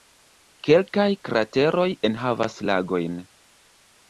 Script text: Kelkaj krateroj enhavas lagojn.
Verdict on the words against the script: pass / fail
pass